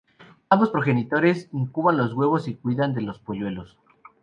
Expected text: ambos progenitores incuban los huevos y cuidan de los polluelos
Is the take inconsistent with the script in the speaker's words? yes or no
no